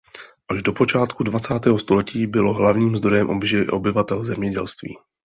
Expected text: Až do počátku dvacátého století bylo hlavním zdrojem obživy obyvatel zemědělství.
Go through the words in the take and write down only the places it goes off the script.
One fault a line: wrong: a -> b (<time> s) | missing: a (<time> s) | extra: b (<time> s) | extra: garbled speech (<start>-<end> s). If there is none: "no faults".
no faults